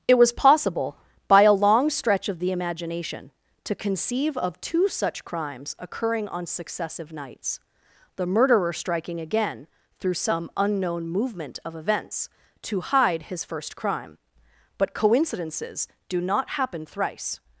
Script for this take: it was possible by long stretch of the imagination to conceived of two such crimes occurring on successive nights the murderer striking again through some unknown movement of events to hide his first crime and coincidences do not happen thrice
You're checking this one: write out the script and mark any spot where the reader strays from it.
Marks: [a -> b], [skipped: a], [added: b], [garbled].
it was possible by [added: a] long stretch of the imagination to [conceived -> conceive] of two such crimes occurring on successive nights the murderer striking again through some unknown movement of events to hide his first crime [and -> but] coincidences do not happen thrice